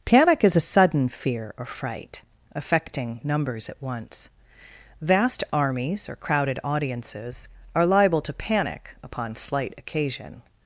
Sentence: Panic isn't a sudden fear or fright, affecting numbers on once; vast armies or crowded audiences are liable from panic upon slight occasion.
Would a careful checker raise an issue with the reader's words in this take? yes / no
yes